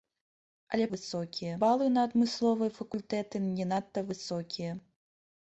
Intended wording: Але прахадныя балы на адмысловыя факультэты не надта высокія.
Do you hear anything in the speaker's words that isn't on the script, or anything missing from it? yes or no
yes